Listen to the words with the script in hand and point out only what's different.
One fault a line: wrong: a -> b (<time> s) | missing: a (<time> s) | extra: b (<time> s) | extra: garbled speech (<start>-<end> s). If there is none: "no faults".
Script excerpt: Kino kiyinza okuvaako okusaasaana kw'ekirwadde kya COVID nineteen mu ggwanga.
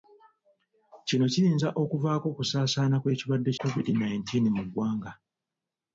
missing: kya (3.5 s)